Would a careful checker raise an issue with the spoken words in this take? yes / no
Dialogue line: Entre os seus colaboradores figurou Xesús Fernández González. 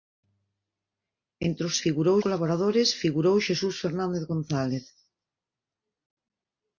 yes